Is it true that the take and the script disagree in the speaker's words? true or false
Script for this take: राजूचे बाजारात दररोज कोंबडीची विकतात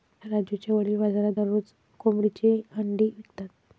true